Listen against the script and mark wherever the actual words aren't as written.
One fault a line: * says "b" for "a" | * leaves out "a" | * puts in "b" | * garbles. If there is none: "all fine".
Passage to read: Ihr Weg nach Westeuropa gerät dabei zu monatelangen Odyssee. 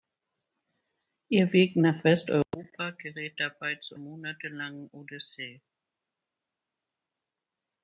all fine